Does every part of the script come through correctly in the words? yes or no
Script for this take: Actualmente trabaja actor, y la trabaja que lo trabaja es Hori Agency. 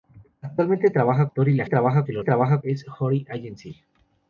yes